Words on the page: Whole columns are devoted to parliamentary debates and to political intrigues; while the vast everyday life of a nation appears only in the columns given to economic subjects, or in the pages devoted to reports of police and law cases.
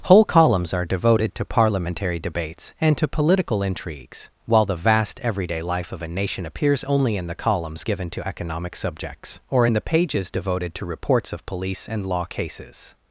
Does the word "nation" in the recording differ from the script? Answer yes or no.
no